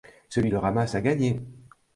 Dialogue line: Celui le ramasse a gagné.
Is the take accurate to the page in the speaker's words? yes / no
yes